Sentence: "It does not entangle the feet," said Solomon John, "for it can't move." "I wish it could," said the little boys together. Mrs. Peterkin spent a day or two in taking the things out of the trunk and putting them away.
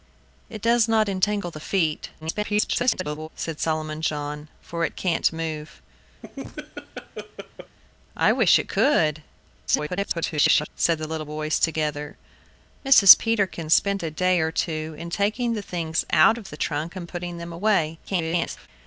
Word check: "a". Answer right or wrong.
right